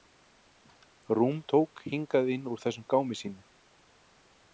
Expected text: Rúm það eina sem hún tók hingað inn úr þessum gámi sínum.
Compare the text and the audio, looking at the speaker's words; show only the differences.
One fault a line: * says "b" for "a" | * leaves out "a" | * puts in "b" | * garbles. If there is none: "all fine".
* leaves out "það eina sem"